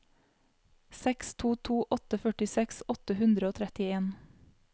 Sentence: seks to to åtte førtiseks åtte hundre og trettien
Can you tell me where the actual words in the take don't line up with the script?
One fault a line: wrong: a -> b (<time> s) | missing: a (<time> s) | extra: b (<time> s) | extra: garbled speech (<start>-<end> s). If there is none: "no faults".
no faults